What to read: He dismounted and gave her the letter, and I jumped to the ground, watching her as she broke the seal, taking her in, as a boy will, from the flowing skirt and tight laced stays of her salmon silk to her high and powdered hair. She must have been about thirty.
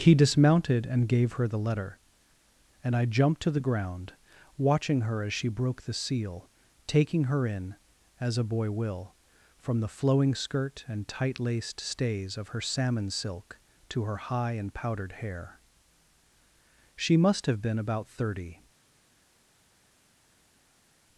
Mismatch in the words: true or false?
false